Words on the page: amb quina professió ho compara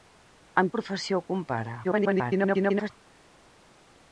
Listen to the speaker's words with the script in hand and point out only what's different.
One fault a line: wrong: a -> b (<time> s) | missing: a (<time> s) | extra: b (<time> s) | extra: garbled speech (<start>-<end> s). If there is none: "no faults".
missing: quina (0.7 s)
extra: garbled speech (1.8-2.9 s)